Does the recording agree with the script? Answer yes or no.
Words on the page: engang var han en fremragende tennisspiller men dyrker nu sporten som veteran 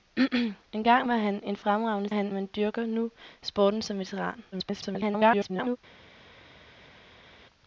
no